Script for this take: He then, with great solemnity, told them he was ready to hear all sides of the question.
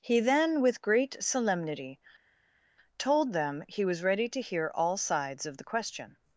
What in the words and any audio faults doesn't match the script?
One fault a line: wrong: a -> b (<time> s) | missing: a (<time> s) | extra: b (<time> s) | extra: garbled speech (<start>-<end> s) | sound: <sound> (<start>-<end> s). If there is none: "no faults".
no faults